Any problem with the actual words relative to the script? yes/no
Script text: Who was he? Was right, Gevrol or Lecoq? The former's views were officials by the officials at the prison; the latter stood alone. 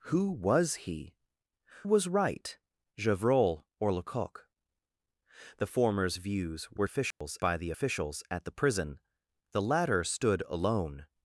no